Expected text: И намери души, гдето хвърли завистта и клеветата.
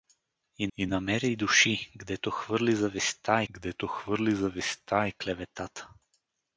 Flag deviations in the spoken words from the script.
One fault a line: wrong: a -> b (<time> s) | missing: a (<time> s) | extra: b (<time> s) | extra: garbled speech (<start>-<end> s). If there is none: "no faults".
extra: и (0.8 s)
extra: гдето хвърли завистта (3.5 s)